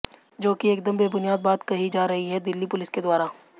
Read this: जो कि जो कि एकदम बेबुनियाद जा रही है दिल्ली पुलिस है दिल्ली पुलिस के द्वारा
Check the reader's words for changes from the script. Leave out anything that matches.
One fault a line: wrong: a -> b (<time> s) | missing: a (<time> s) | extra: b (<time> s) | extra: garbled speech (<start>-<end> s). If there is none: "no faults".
wrong: जो कि एकदम बेबुनियाद -> एकदम बेबुनियाद बात कही (0.7 s)
missing: है दिल्ली पुलिस (2.9 s)